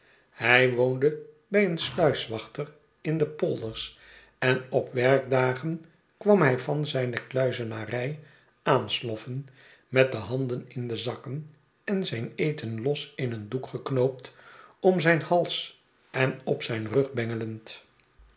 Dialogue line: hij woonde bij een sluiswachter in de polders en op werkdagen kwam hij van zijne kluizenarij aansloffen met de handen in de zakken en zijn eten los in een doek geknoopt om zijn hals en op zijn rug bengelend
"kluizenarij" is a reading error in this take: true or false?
false